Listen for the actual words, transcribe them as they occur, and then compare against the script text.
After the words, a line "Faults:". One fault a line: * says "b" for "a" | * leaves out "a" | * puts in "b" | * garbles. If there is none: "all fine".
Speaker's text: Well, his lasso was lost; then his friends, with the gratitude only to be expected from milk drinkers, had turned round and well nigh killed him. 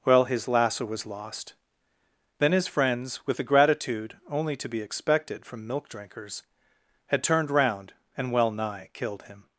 Well, his lasso was lost; then his friends, with the gratitude only to be expected from milk drinkers, had turned round and well nigh killed him.
Faults:
all fine